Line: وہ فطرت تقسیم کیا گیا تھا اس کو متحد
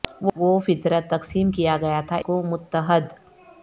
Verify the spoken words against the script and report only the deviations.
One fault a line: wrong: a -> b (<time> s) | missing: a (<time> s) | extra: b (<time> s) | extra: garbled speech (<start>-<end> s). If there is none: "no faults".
missing: اس (2.2 s)